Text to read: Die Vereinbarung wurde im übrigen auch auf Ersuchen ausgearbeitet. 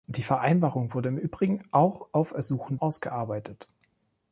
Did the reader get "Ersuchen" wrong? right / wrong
right